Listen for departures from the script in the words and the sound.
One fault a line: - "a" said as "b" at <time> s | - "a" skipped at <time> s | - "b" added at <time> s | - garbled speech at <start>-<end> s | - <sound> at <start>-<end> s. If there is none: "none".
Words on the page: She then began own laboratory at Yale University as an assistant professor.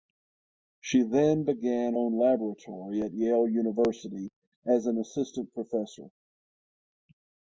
none